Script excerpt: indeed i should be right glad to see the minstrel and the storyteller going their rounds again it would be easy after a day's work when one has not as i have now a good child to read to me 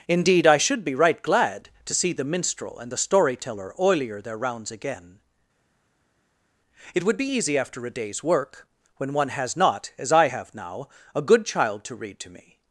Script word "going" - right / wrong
wrong